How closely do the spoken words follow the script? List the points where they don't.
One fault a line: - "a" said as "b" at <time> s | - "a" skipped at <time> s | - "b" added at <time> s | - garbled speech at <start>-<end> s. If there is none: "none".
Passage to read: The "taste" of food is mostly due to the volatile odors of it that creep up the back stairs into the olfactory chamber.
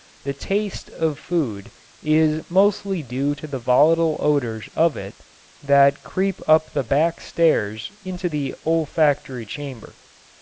none